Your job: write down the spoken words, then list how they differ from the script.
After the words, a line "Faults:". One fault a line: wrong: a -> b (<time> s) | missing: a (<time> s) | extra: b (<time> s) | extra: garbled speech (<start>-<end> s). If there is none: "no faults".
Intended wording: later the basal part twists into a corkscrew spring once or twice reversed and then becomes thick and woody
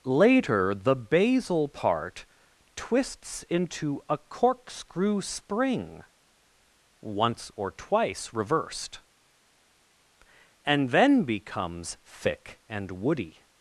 later the basal part twists into a corkscrew spring once or twice reversed and then becomes thick and woody
Faults:
no faults